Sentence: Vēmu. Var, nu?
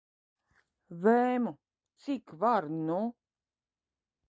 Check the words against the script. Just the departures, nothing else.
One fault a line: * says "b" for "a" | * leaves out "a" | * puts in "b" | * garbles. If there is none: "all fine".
* puts in "Cik"